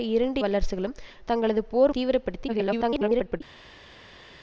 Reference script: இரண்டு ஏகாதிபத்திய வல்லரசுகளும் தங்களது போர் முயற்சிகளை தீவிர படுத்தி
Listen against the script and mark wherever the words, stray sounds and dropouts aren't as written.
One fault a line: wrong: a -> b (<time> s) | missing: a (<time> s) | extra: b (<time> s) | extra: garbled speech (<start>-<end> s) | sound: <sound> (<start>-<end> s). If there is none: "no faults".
missing: ஏகாதிபத்திய (0.4 s)
missing: முயற்சிகளை (1.9 s)
extra: garbled speech (2.5-3.4 s)